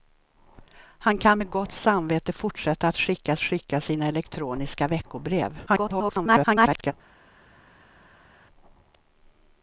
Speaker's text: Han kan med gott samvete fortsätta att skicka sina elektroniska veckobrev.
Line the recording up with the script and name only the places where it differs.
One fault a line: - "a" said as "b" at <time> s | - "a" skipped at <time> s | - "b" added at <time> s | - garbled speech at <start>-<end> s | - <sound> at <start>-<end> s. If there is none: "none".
- "skicka" added at 3.4 s
- garbled speech at 5.7-6.9 s